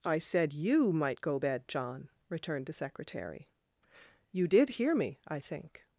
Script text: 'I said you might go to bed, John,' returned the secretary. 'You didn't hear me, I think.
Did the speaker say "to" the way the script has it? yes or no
no